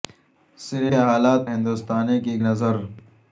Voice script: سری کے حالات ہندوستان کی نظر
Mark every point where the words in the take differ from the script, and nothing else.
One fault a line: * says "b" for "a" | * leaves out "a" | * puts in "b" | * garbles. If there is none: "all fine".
all fine